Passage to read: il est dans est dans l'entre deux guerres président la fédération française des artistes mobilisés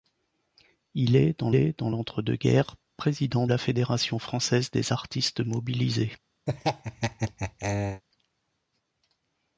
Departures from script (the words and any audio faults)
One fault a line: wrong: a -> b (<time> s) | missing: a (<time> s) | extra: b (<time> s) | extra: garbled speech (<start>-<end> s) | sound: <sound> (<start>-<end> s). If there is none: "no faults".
sound: laugh (6.5-8.0 s)